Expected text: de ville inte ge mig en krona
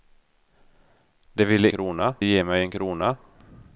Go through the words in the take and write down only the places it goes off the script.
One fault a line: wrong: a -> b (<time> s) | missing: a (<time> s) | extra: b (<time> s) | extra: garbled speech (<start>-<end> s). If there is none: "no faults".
wrong: inte -> krona (1.7 s)